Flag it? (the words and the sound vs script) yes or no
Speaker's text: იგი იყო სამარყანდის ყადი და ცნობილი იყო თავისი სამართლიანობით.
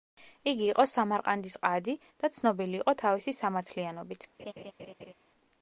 yes